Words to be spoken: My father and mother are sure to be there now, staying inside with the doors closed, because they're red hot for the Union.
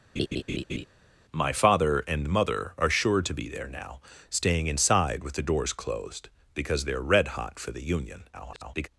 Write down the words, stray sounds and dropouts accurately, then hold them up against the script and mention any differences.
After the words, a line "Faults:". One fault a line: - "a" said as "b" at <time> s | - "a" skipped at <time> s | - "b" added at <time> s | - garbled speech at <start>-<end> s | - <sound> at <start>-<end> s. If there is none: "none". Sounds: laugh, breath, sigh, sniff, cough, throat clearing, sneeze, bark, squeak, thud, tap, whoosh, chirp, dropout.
My father and mother are sure to be there now, staying inside with the doors closed, because they're red hot for the Union. [garbled]
Faults:
- laugh at 0.2-0.8 s
- garbled speech at 8.3-8.9 s